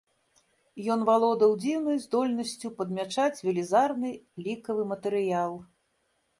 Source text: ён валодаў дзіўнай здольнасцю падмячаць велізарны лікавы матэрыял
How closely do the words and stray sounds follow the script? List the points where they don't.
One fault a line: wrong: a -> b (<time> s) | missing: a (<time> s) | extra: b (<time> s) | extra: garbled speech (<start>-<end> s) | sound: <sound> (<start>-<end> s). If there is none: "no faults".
no faults